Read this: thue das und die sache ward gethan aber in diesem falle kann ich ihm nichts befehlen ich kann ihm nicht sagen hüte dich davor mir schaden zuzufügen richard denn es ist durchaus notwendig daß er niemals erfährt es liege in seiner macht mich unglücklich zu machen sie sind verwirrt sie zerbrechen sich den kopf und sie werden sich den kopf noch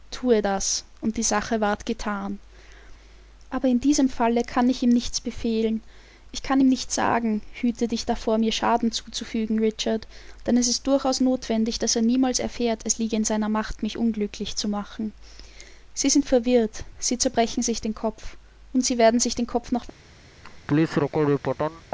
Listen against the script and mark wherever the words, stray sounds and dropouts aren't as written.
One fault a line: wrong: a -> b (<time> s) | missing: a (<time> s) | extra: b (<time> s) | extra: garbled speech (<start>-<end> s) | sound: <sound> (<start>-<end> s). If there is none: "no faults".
sound: laugh (20.4-21.8 s)